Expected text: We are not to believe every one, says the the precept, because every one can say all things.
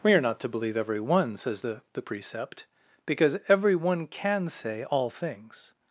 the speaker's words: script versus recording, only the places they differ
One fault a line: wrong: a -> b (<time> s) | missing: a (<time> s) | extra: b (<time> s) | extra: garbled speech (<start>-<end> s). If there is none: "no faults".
no faults